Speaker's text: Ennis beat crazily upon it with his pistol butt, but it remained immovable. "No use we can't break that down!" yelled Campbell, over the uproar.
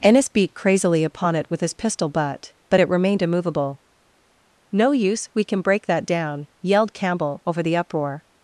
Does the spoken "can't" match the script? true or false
false